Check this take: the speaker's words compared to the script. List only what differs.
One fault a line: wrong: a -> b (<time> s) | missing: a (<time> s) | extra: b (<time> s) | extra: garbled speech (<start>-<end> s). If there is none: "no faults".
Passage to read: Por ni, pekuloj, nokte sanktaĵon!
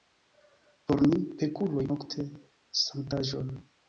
no faults